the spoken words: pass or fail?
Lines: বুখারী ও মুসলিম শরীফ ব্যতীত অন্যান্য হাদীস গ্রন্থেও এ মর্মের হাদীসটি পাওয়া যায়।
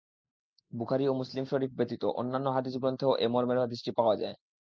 pass